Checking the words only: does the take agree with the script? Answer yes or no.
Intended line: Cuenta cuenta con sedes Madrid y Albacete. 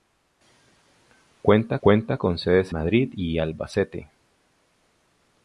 yes